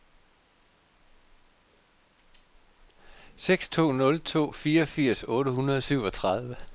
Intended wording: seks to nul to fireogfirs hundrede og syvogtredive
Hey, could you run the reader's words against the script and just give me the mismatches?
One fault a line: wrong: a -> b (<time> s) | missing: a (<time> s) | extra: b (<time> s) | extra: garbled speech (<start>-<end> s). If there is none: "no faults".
extra: otte (5.3 s)